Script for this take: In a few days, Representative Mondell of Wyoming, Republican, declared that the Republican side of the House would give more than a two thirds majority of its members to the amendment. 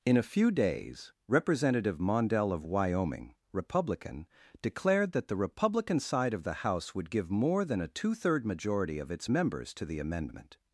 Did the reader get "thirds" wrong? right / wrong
wrong